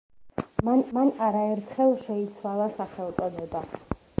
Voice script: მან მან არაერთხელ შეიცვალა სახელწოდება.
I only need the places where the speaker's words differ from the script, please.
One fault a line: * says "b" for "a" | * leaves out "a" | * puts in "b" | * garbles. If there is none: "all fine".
all fine